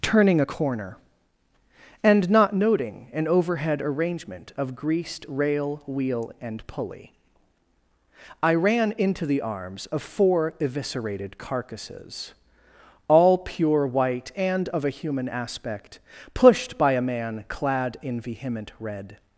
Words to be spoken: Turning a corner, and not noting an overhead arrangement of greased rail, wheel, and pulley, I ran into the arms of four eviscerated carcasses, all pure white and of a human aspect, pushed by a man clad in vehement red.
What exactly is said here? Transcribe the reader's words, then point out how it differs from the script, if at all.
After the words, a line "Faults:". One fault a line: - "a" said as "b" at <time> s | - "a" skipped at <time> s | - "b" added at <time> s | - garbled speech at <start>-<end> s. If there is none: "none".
Turning a corner, and not noting an overhead arrangement of greased rail, wheel, and pulley, I ran into the arms of four eviscerated carcasses, all pure white and of a human aspect, pushed by a man clad in vehement red.
Faults:
none